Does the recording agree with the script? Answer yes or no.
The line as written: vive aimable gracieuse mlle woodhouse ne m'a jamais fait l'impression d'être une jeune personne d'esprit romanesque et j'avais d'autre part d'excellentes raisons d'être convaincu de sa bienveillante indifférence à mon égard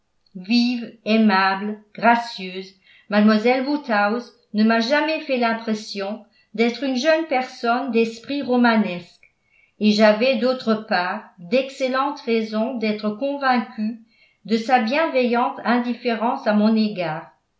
yes